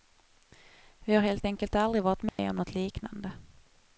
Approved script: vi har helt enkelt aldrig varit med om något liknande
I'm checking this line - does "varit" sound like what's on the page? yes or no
yes